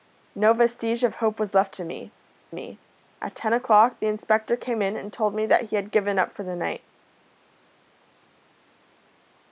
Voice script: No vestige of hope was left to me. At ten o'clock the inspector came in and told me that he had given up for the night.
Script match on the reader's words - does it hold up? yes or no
no